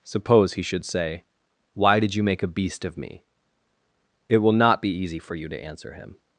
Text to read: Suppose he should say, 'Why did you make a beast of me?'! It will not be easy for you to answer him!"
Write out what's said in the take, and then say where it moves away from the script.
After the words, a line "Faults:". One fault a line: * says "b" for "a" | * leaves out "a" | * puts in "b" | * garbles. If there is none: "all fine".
Suppose he should say, 'Why did you make a beast of me?'! It will not be easy for you to answer him!"
Faults:
all fine